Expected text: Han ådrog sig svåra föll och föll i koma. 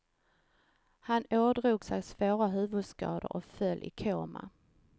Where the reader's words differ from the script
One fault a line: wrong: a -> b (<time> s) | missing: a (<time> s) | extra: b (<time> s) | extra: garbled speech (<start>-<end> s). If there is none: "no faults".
wrong: föll -> huvudskador (2.5 s)